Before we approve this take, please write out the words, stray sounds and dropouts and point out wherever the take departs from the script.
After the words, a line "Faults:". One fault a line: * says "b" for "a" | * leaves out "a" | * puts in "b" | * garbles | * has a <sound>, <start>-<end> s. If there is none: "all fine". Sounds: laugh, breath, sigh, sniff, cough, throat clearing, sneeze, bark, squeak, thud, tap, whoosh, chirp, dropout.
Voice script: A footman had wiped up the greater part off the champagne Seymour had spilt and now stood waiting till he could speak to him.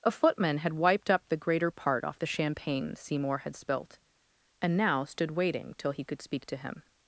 A footman had wiped up the greater part off the champagne Seymour had spilt and now stood waiting till he could speak to him.
Faults:
all fine